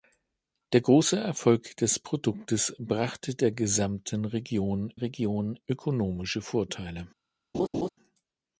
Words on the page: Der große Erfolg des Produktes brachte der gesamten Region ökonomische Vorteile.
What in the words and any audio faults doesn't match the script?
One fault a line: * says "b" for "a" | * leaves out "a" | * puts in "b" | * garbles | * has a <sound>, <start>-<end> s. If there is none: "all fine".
* puts in "Region"
* has a laugh, 7.5-7.9 s